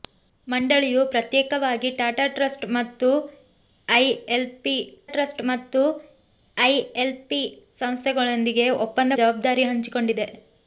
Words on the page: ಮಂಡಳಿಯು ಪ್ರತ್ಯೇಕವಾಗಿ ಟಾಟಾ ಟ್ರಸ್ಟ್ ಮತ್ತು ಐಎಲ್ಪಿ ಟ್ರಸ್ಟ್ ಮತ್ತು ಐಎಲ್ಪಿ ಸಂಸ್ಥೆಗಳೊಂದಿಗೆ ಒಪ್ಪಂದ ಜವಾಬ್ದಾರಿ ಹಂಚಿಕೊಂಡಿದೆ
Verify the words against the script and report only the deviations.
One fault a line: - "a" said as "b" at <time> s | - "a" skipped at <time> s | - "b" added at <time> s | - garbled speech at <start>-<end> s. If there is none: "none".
none